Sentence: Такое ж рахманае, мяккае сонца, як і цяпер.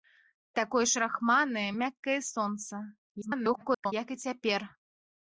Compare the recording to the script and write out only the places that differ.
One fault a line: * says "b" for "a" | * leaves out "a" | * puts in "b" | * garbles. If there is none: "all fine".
* garbles